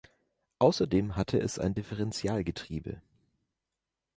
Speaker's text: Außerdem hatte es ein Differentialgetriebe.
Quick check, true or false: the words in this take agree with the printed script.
true